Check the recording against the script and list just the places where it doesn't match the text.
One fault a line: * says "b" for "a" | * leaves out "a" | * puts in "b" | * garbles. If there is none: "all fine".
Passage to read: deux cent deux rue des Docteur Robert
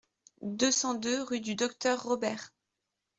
* says "du" for "des"